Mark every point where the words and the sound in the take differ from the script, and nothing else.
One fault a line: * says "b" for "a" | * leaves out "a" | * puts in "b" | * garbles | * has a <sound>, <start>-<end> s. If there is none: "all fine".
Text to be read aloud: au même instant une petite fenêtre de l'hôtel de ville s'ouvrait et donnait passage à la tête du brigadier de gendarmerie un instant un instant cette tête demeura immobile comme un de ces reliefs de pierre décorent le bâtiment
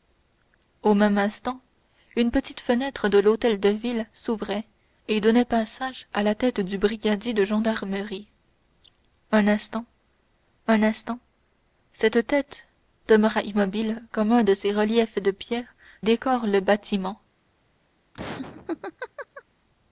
* has a laugh, 18.1-19.4 s